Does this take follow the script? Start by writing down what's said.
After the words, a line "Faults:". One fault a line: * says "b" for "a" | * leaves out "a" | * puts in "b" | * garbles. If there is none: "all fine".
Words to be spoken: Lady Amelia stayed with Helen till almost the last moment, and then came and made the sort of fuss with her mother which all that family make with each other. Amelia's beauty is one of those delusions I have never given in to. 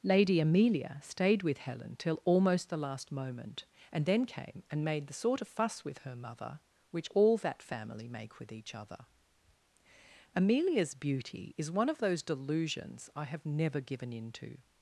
Lady Amelia stayed with Helen till almost the last moment, and then came and made the sort of fuss with her mother which all that family make with each other. Amelia's beauty is one of those delusions I have never given in to.
Faults:
all fine